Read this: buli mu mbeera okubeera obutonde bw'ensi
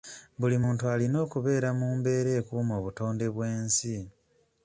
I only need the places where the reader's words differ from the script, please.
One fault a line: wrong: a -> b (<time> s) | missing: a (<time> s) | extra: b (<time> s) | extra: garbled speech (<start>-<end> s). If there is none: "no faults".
extra: muntu alina okubeera (0.6 s)
wrong: okubeera -> ekuuma (2.4 s)